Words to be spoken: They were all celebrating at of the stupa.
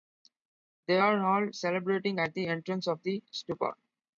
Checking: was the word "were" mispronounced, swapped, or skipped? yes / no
yes